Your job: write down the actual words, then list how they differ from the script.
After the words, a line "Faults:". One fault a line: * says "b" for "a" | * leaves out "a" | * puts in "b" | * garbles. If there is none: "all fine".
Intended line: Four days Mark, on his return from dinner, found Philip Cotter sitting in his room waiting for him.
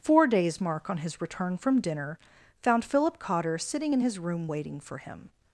Four days Mark, on his return from dinner, found Philip Cotter sitting in his room waiting for him.
Faults:
all fine